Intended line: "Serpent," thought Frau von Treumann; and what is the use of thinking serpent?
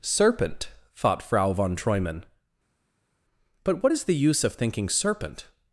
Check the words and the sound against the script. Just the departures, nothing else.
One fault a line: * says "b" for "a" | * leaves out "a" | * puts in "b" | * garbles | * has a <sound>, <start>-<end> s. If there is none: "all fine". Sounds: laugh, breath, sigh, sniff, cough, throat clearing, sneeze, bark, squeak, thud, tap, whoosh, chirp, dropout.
* says "but" for "and"